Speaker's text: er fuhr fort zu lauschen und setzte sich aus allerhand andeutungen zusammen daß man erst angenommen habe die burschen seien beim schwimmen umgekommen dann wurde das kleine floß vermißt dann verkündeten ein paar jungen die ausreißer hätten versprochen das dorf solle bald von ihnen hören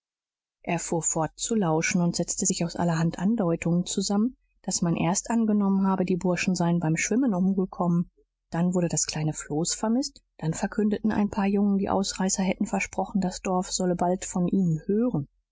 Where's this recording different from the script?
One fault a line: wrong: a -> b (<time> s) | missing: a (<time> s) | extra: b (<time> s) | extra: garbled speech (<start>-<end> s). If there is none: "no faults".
no faults